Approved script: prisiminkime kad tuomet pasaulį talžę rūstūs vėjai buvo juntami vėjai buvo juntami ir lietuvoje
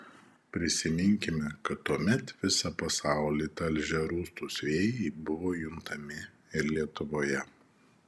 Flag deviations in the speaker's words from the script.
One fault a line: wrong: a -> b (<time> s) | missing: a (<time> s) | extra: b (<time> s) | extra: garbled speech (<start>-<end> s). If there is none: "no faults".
extra: visą (2.4 s)
missing: vėjai buvo juntami (6.2 s)